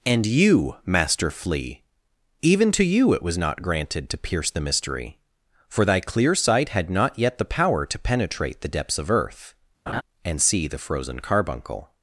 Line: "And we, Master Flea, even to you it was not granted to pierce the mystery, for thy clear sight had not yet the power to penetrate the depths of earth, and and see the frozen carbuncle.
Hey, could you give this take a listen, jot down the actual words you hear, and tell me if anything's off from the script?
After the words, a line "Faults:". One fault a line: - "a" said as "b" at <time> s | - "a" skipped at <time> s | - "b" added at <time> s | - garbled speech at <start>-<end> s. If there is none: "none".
"And you, Master Flea, even to you it was not granted to pierce the mystery, for thy clear sight had not yet the power to penetrate the depths of earth, and see the frozen carbuncle.
Faults:
- "we" said as "you" at 0.2 s
- "and" skipped at 10.4 s